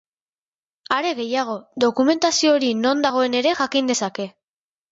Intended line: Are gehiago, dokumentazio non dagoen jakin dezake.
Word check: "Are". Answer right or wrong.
right